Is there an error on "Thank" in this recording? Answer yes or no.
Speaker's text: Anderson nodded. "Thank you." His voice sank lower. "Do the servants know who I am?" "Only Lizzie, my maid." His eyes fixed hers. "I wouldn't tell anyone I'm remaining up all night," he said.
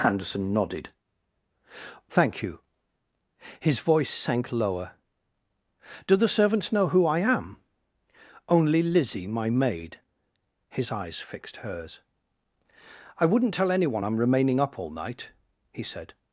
no